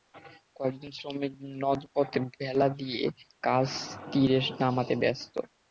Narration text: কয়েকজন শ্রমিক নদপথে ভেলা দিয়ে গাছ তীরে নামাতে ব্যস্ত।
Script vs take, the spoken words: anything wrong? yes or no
no